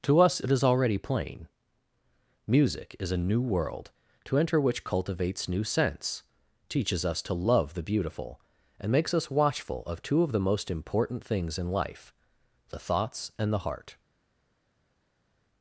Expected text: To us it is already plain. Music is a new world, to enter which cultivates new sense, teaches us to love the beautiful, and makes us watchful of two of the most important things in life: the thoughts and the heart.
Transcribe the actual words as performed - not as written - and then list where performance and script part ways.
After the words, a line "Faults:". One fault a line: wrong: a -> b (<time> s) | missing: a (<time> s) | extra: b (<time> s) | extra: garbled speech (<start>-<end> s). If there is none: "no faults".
To us it is already plain. Music is a new world, to enter which cultivates new sense, teaches us to love the beautiful, and makes us watchful of two of the most important things in life: the thoughts and the heart.
Faults:
no faults